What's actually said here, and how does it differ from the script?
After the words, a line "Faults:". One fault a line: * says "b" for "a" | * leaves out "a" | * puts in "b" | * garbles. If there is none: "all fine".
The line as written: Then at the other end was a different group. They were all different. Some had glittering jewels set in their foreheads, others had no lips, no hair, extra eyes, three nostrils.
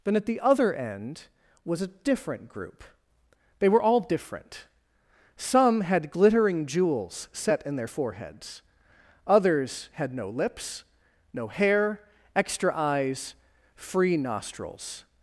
Then at the other end was a different group. They were all different. Some had glittering jewels set in their foreheads, others had no lips, no hair, extra eyes, free nostrils.
Faults:
* says "free" for "three"